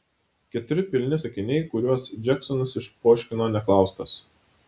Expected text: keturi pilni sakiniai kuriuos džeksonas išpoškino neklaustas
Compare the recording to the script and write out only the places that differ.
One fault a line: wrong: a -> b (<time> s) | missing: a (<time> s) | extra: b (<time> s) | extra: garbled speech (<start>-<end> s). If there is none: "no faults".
no faults